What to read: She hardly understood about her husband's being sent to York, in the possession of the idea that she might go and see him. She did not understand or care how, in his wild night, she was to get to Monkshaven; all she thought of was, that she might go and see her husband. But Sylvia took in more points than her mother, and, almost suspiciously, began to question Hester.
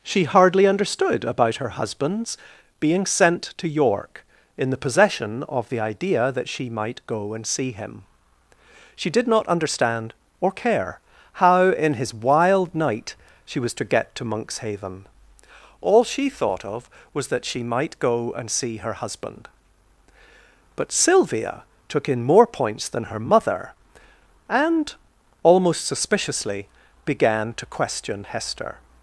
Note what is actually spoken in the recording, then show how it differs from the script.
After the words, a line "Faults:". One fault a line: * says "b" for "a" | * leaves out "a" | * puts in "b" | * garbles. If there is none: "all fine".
She hardly understood about her husband's being sent to York, in the possession of the idea that she might go and see him. She did not understand or care how, in his wild night, she was to get to Monkshaven; all she thought of was, that she might go and see her husband. But Sylvia took in more points than her mother, and, almost suspiciously, began to question Hester.
Faults:
all fine